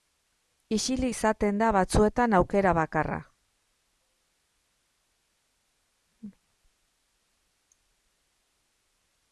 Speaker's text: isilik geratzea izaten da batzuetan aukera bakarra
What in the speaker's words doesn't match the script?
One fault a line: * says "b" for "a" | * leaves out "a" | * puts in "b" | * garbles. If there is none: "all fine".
* leaves out "geratzea"